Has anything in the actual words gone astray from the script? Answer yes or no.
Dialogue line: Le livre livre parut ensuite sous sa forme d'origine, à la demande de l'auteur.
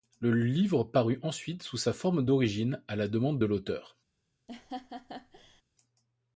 yes